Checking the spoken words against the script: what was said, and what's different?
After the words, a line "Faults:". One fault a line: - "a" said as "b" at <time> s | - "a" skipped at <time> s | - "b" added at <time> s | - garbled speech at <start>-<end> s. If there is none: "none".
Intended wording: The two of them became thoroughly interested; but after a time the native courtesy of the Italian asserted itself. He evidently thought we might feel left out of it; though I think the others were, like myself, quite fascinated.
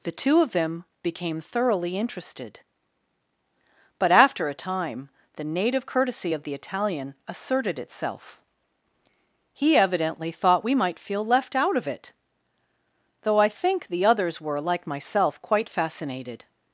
The two of them became thoroughly interested; but after a time the native courtesy of the Italian asserted itself. He evidently thought we might feel left out of it; though I think the others were, like myself, quite fascinated.
Faults:
none